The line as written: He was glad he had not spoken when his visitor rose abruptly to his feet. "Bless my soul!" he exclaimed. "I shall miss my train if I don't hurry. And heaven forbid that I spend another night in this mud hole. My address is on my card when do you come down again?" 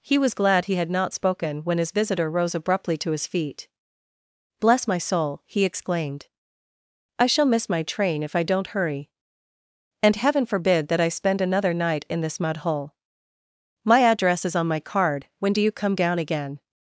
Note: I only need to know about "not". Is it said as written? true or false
true